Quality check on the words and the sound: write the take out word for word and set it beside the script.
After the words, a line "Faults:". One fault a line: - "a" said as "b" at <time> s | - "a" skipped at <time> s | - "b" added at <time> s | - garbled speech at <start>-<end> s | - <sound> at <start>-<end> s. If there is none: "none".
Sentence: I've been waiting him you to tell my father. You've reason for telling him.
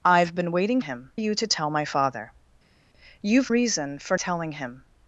I've been waiting him you to tell my father. You've reason for telling him.
Faults:
none